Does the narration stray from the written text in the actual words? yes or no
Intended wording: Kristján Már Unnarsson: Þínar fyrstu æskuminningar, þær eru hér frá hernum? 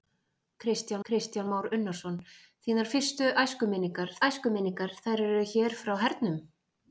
yes